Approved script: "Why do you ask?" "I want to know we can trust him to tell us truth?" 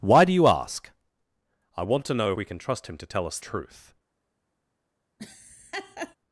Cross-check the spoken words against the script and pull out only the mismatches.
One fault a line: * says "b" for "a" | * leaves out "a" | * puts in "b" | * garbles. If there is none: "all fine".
all fine